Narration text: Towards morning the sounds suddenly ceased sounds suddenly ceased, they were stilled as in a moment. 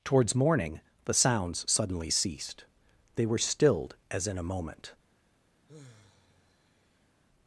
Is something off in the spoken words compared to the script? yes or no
yes